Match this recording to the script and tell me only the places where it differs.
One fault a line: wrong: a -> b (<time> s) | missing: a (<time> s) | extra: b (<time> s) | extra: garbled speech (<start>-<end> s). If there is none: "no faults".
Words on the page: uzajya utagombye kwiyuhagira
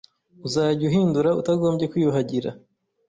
extra: uhindura (0.9 s)